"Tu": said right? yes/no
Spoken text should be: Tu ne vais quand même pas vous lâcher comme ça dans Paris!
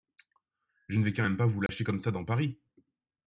no